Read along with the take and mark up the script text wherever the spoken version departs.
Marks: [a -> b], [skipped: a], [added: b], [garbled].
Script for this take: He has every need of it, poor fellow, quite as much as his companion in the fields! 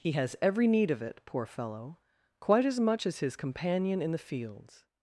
He has every need of it, poor fellow, quite as much as his companion in the fields!